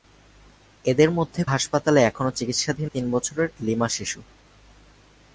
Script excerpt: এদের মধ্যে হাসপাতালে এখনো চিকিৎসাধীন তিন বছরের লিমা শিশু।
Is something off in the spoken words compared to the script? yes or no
no